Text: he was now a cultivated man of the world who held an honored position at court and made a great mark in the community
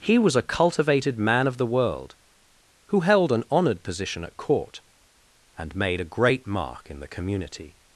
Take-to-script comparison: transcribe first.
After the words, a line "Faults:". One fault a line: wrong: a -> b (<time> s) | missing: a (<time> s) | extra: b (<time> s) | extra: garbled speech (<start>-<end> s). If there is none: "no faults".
he was a cultivated man of the world who held an honored position at court and made a great mark in the community
Faults:
missing: now (0.3 s)